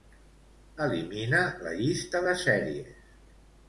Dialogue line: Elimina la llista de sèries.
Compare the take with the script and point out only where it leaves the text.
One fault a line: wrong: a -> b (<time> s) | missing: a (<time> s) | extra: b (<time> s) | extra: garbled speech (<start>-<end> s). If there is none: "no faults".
no faults